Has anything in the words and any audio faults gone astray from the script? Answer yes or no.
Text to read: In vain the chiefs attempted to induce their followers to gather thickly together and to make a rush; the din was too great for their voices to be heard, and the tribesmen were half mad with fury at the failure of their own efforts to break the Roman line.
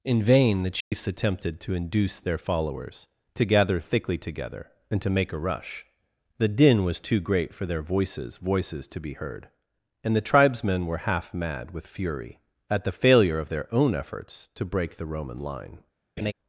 yes